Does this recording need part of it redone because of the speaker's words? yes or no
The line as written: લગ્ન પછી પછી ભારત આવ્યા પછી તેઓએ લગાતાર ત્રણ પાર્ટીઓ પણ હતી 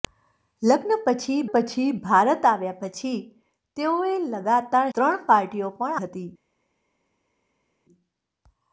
no